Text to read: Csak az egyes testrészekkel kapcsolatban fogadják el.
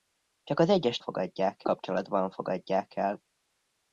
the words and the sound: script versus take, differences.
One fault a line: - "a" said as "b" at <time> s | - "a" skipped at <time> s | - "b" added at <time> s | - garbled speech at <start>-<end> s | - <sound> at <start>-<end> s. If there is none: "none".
- "testrészekkel" said as "fogadják" at 1.0 s